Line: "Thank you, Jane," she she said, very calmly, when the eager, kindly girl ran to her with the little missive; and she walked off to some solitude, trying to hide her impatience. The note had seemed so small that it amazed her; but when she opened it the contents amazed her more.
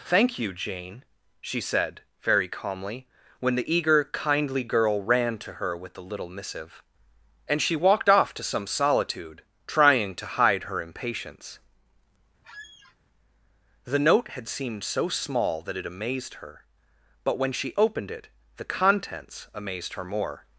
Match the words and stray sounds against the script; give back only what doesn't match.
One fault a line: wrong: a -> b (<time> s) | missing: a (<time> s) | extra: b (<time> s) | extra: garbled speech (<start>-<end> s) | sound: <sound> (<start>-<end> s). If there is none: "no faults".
missing: she (1.6 s)
sound: squeak (12.4-13.0 s)